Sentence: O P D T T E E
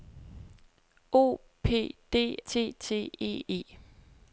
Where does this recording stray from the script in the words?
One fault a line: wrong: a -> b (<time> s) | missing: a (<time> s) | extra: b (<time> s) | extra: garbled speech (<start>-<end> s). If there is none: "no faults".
no faults